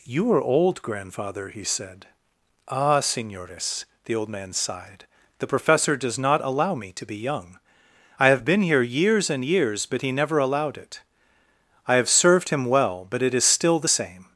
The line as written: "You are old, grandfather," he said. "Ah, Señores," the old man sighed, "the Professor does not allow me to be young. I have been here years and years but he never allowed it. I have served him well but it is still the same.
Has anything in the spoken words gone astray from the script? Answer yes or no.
no